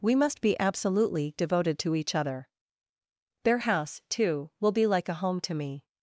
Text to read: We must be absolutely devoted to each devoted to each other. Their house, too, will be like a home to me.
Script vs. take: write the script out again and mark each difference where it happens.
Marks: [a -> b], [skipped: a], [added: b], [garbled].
We must be absolutely devoted to each [skipped: devoted to each] other. Their house, too, will be like a home to me.